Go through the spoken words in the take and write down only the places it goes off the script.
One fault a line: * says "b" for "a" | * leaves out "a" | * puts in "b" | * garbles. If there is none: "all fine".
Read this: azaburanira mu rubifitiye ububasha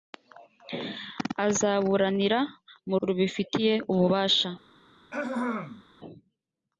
all fine